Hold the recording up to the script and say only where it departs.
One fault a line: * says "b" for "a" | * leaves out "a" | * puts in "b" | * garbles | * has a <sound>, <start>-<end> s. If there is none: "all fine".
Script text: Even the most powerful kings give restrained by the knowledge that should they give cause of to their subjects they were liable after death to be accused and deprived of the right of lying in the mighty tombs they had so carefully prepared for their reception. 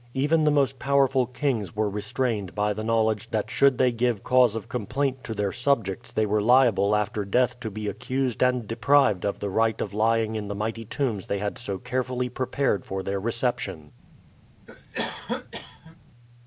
* says "were" for "give"
* puts in "complaint"
* has a cough, 14.7-16.0 s